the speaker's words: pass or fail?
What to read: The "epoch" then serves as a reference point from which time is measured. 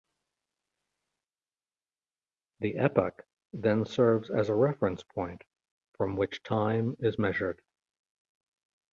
pass